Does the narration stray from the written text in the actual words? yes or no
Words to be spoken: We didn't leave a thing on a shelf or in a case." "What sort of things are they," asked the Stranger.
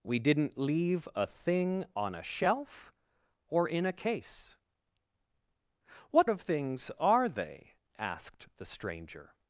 yes